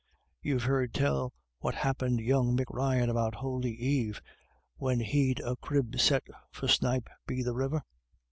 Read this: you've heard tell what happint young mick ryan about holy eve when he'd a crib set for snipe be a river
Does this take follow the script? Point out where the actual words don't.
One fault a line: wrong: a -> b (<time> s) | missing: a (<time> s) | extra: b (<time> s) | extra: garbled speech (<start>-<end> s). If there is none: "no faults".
wrong: a -> the (7.4 s)